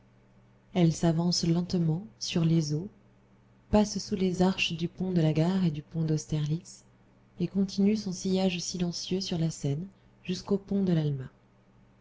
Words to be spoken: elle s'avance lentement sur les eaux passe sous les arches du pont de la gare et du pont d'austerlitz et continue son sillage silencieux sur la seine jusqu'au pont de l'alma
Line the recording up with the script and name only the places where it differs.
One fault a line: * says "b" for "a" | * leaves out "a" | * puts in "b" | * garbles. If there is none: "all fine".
all fine